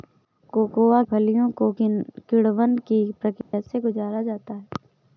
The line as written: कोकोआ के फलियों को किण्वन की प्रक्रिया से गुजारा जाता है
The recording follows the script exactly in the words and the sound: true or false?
false